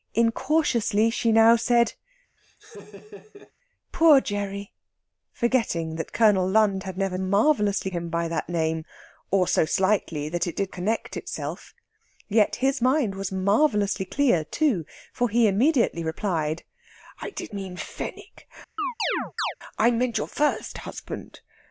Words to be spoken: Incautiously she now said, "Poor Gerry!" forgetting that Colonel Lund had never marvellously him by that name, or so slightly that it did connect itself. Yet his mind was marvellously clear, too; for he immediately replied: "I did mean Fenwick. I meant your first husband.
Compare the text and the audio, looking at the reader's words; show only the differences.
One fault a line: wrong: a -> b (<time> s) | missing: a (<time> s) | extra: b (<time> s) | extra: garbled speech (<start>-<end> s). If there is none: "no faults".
no faults